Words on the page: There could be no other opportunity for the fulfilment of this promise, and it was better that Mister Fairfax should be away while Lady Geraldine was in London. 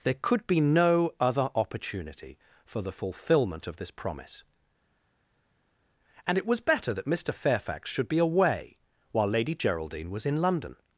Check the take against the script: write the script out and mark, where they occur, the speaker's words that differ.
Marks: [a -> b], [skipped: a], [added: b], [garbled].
There could be no other opportunity for the fulfilment of this promise, and it was better that Mister Fairfax should be away while Lady Geraldine was in London.